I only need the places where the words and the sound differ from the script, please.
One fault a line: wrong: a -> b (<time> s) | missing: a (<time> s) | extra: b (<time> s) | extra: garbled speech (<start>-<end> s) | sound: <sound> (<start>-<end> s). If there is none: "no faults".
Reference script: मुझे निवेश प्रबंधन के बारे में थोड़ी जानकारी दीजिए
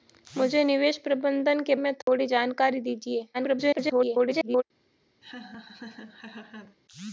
missing: बारे (1.8 s)
sound: dropout (2.0-2.1 s)
extra: garbled speech (3.3-4.6 s)
sound: laugh (5.2-6.8 s)